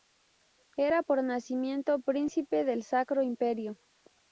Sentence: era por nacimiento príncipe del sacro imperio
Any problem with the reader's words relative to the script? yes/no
no